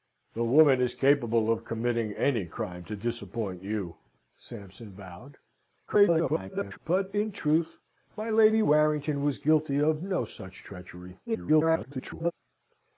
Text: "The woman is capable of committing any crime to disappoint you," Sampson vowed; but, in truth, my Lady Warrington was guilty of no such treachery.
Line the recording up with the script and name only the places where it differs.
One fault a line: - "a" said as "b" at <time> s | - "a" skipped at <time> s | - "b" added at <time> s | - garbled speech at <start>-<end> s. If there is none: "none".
- garbled speech at 5.9-6.8 s
- garbled speech at 11.3-12.3 s